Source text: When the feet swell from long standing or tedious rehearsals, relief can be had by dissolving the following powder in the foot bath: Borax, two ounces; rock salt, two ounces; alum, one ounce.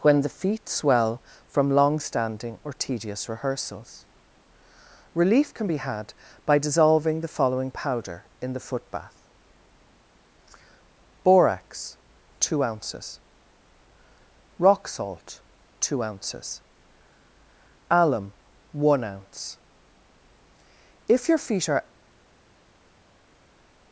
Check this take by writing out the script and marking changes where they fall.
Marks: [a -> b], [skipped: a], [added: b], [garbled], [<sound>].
When the feet swell from long standing or tedious rehearsals, relief can be had by dissolving the following powder in the foot bath: Borax, two ounces; rock salt, two ounces; alum, one ounce. [added: If your feet are]